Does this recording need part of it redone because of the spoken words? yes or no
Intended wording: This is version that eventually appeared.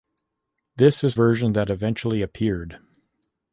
no